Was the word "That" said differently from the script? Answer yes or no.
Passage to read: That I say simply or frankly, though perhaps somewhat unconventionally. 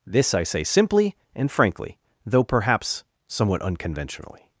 yes